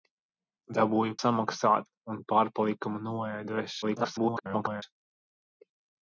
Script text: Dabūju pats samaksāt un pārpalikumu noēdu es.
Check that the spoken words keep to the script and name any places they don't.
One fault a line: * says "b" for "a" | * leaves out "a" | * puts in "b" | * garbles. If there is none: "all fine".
* leaves out "pats"
* garbles